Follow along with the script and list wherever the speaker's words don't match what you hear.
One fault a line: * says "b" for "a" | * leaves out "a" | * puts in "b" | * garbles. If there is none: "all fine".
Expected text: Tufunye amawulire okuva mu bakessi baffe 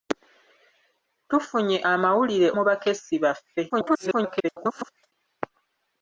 * leaves out "okuva"
* garbles